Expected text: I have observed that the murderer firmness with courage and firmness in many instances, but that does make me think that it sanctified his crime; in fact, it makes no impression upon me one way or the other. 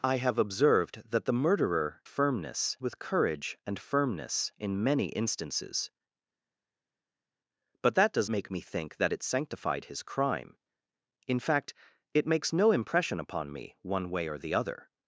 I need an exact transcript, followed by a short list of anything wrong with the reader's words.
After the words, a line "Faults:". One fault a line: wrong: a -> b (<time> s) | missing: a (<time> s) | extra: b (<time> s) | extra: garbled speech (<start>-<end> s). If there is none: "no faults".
I have observed that the murderer firmness with courage and firmness in many instances, but that does make me think that it sanctified his crime; in fact, it makes no impression upon me one way or the other.
Faults:
no faults